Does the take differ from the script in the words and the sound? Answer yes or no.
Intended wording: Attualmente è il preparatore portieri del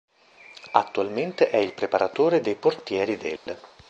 yes